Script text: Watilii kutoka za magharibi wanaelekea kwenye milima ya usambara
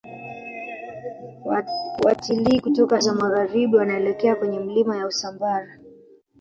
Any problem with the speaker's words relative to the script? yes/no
no